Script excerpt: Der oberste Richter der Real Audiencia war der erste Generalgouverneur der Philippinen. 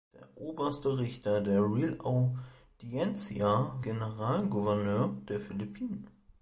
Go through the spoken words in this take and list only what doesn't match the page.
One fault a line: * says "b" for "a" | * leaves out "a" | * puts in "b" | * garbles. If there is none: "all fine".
* leaves out "war der erste"